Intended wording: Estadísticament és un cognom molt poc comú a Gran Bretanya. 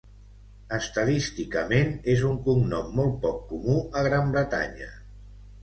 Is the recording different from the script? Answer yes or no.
no